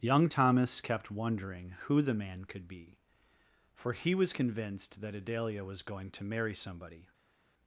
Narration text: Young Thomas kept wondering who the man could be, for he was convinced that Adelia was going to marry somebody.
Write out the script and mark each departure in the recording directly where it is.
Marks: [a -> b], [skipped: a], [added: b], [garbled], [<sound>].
Young Thomas kept wondering who the man could be, for he was convinced that Adelia was going to marry somebody.